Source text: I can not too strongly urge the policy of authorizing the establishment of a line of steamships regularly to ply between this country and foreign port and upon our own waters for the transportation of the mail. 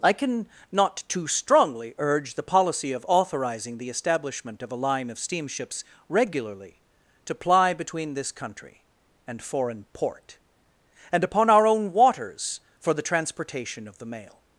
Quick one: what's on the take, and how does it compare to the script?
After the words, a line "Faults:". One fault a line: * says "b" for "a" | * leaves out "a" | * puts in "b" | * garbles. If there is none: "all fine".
I can not too strongly urge the policy of authorizing the establishment of a line of steamships regularly to ply between this country and foreign port and upon our own waters for the transportation of the mail.
Faults:
all fine